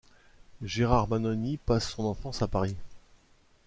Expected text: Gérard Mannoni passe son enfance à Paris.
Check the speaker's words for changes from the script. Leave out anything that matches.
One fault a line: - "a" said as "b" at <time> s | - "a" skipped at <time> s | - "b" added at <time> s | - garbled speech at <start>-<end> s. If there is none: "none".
none